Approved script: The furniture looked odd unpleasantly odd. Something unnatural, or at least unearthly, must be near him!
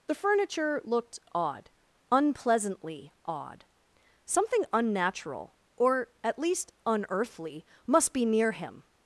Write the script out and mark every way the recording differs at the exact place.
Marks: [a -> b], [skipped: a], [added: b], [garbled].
The furniture looked odd unpleasantly odd. Something unnatural, or at least unearthly, must be near him!